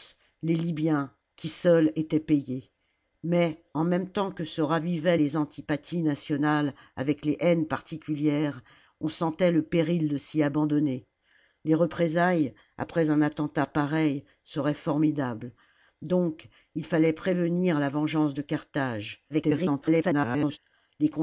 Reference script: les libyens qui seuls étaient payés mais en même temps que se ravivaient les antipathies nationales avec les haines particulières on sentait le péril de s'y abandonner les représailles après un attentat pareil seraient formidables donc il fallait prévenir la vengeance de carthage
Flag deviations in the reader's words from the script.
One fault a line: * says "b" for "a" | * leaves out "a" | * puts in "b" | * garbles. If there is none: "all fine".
* garbles